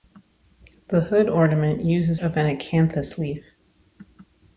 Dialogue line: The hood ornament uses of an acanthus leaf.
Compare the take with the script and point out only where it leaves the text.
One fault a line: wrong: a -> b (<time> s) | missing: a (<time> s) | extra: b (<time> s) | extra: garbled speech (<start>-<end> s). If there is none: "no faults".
no faults